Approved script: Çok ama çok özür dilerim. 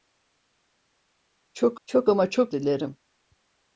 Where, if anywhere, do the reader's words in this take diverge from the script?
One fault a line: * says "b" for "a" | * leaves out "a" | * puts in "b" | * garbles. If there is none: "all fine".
* puts in "çok"
* leaves out "özür"